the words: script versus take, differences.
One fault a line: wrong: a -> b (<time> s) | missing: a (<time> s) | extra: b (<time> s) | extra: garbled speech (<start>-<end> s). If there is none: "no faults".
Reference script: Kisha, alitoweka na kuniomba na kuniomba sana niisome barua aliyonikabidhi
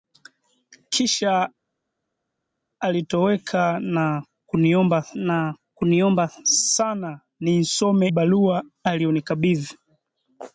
no faults